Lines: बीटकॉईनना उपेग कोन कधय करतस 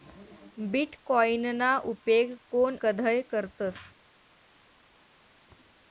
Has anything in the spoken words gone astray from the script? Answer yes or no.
no